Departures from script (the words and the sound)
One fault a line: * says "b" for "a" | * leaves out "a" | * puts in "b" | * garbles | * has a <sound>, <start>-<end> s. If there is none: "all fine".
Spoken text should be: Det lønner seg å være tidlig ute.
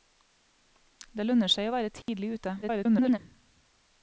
* has a dropout, 2.0-2.1 s
* garbles